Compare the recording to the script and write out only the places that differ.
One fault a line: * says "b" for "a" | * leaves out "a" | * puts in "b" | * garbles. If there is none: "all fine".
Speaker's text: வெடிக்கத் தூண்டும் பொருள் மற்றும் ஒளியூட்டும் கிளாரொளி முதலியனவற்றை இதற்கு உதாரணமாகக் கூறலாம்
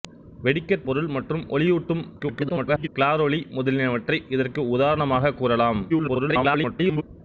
* leaves out "தூண்டும்"
* garbles
* garbles